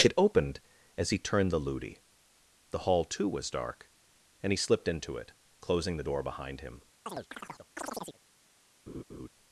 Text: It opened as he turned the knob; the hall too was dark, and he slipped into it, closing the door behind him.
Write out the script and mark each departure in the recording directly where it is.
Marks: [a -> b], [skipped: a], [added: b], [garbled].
It opened as he turned the [knob; -> loody] the hall too was dark, and he slipped into it, closing the door behind him.